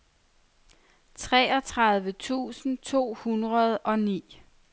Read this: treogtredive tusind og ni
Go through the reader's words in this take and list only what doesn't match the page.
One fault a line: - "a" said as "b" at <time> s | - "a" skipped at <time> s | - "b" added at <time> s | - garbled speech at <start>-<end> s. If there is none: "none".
- "to hundrede" added at 2.8 s